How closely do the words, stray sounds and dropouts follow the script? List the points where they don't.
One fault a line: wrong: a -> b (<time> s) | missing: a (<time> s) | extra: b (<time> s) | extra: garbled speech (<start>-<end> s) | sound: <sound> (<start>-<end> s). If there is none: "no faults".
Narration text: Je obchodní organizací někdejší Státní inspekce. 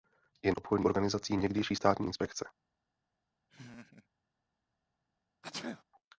sound: laugh (3.5-4.1 s)
sound: sneeze (5.4-5.8 s)